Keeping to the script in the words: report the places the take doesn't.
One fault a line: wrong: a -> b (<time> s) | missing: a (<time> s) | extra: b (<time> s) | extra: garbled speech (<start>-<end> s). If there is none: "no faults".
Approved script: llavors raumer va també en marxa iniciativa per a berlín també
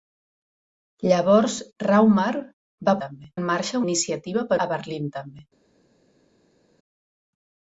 no faults